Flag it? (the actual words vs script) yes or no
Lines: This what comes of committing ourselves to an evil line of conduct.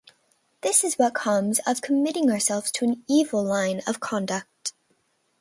yes